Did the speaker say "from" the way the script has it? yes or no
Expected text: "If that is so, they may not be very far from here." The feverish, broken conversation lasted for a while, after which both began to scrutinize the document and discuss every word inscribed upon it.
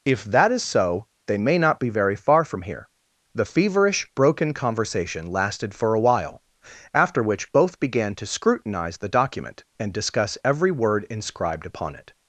yes